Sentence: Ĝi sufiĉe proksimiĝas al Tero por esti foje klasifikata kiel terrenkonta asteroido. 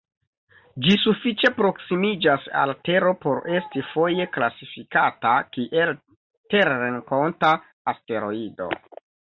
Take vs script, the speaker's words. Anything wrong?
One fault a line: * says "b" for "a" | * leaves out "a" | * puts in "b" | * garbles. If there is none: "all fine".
all fine